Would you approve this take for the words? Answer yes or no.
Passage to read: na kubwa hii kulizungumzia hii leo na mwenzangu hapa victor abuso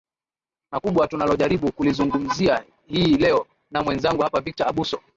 no